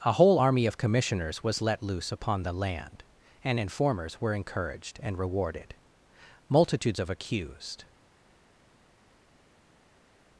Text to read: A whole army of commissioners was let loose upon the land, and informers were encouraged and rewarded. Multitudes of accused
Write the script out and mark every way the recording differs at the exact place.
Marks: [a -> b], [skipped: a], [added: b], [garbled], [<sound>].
A whole army of commissioners was let loose upon the land, and informers were encouraged and rewarded. Multitudes of accused